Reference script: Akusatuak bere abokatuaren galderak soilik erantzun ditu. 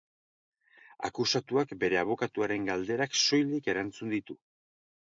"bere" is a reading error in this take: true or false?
false